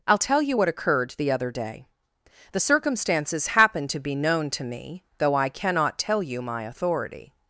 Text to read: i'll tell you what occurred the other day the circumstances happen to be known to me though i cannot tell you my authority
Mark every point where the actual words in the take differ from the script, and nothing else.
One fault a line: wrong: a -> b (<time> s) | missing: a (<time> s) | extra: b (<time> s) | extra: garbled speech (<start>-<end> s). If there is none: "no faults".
no faults